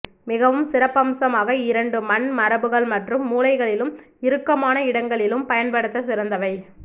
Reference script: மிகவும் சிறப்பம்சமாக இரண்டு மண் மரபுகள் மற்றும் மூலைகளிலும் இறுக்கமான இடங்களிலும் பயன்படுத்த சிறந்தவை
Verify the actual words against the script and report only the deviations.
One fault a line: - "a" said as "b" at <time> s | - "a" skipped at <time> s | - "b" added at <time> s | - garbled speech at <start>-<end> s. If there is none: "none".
none